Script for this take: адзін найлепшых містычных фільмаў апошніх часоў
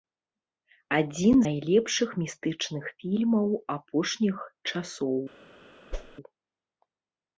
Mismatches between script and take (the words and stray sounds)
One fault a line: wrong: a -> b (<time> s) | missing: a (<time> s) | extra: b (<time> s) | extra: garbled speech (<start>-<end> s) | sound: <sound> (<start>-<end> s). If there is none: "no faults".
sound: whoosh (5.9-6.2 s)